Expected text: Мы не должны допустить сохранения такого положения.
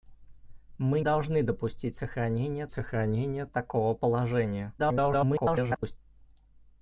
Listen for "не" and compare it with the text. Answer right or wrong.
wrong